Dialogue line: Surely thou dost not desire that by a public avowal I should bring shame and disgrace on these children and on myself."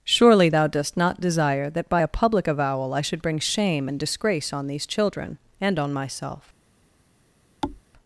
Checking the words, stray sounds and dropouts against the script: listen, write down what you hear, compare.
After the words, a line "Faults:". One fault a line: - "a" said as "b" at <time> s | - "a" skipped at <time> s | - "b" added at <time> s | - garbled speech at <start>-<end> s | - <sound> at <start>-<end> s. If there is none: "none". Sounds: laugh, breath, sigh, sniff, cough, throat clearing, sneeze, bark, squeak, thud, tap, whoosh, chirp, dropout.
Surely thou dost not desire that by a public avowal I should bring shame and disgrace on these children and on myself."
Faults:
- thud at 7.6-7.8 s